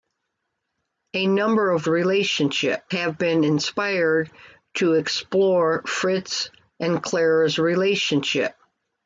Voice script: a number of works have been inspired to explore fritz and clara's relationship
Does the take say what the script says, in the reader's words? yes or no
no